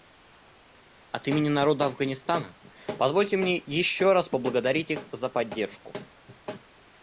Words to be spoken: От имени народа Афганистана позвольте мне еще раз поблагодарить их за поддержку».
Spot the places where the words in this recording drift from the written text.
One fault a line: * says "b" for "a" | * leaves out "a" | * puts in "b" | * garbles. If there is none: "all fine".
all fine